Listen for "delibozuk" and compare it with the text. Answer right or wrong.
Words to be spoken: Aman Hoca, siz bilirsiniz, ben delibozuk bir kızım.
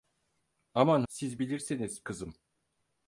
wrong